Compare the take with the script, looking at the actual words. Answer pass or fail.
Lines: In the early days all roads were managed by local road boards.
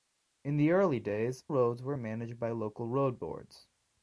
fail